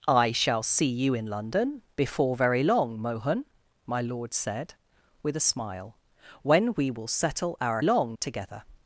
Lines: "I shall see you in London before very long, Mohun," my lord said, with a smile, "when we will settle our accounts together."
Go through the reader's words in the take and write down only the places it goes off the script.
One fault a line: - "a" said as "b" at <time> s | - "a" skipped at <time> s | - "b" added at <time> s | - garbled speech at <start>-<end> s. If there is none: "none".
- "accounts" said as "long" at 7.8 s